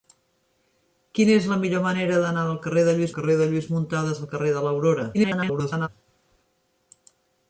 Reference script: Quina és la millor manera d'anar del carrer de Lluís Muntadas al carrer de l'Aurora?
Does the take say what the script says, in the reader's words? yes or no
no